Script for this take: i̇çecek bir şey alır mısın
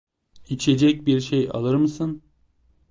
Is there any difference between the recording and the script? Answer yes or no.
no